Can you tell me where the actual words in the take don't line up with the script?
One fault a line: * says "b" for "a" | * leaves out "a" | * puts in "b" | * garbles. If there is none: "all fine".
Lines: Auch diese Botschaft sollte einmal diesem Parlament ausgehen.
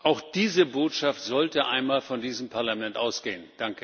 * puts in "von"